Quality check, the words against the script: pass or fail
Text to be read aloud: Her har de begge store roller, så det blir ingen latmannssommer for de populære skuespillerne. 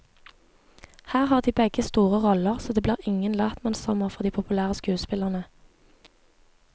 pass